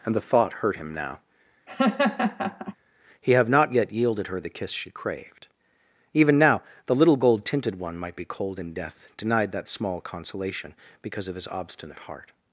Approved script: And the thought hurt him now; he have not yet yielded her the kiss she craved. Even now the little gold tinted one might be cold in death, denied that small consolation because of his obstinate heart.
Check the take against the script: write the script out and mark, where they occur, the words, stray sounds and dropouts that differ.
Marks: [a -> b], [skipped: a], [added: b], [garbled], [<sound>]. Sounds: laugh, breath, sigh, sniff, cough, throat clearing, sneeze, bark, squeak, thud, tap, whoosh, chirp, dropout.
And the thought hurt him now; [laugh] he have not yet yielded her the kiss she craved. Even now the little gold tinted one might be cold in death, denied that small consolation because of his obstinate heart.